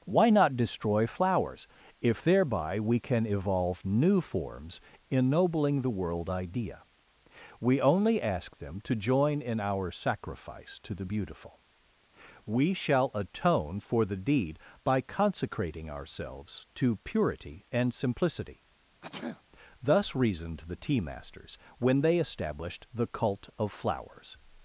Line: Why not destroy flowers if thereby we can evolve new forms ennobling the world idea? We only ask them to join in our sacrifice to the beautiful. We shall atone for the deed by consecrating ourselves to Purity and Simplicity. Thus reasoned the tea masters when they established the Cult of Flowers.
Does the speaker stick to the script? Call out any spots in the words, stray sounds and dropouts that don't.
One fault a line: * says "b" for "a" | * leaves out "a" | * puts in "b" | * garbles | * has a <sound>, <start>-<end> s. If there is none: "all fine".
* has a sneeze, 19.0-19.4 s